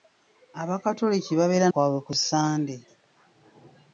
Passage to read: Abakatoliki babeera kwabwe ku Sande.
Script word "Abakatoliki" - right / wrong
right